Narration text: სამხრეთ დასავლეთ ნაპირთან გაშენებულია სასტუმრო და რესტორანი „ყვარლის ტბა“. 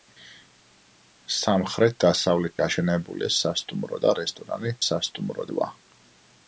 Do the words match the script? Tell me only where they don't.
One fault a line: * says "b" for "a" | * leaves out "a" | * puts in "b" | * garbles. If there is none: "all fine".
* leaves out "ნაპირთან"
* says "სასტუმრო" for "ყვარლის"